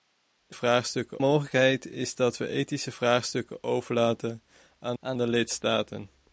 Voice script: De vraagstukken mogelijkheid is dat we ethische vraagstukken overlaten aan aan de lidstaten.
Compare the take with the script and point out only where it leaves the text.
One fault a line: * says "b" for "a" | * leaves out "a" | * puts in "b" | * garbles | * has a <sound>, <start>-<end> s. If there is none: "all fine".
all fine